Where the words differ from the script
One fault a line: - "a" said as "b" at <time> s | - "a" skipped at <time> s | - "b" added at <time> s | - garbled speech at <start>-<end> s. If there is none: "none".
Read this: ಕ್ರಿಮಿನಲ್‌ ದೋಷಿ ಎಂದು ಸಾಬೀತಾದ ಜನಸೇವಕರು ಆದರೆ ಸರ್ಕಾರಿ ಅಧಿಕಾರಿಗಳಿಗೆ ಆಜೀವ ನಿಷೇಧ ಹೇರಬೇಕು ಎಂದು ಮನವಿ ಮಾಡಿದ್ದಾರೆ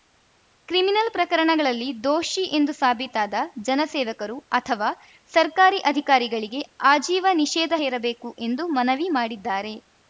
- "ಪ್ರಕರಣಗಳಲ್ಲಿ" added at 1.1 s
- "ಆದರೆ" said as "ಅಥವಾ" at 4.5 s